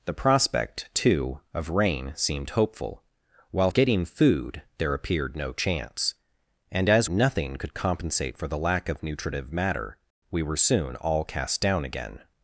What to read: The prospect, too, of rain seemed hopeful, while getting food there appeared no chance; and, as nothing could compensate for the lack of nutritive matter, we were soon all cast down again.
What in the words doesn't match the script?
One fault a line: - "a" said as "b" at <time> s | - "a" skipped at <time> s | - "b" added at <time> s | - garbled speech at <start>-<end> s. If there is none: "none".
none